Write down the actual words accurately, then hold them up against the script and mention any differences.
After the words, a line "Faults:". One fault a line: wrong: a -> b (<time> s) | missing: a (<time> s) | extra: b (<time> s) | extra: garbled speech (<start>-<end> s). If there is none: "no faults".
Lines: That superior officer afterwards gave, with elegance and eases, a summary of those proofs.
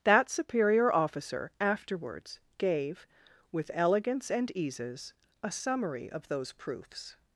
That superior officer afterwards gave, with elegance and eases, a summary of those proofs.
Faults:
no faults